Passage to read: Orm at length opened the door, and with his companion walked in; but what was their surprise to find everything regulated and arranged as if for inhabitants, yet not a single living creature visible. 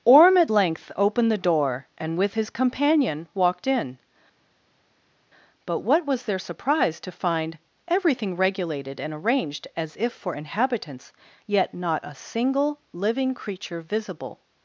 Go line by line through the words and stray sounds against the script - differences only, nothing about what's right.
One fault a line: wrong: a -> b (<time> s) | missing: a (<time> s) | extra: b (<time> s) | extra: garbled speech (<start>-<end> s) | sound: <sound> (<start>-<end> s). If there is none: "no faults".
no faults